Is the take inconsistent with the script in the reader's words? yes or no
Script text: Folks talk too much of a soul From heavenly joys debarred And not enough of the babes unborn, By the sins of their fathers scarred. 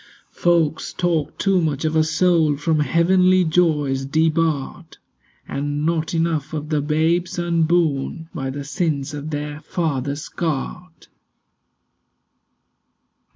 no